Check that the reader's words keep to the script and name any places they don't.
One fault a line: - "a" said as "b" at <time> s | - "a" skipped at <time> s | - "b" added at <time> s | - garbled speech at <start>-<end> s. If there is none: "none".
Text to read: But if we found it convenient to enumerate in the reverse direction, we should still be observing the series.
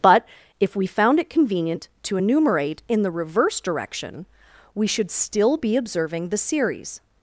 none